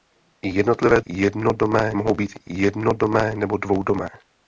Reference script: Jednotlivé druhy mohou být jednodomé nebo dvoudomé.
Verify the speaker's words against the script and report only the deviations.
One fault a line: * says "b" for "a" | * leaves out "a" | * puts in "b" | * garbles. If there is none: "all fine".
* says "jednodomé" for "druhy"